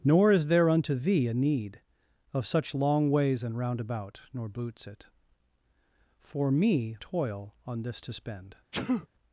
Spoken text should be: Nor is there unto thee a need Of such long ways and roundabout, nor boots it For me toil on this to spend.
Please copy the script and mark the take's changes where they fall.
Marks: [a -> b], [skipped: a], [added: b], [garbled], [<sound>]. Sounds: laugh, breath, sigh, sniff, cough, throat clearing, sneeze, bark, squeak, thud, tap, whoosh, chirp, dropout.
Nor is there unto thee a need Of such long ways and roundabout, nor boots it For me toil on this to spend. [sneeze]